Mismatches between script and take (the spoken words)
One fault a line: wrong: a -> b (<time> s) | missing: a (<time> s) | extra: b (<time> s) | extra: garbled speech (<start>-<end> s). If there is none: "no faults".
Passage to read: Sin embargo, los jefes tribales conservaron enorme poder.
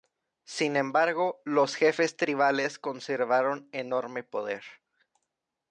no faults